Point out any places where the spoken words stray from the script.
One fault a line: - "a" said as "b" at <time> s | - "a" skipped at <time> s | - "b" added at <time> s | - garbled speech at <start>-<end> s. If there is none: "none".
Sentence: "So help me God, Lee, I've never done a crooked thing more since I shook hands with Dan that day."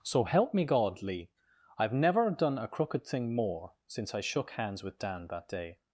none